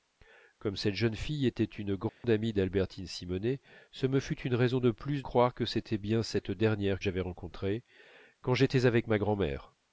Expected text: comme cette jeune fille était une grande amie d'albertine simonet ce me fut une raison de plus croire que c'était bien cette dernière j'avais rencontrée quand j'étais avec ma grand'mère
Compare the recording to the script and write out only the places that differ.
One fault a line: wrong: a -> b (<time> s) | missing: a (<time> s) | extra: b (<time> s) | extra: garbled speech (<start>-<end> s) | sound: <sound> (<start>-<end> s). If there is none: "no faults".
sound: dropout (2.1-2.2 s)